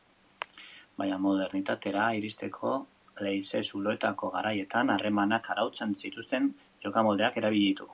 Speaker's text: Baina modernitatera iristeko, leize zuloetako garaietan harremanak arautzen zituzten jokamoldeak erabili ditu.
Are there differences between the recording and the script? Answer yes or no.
no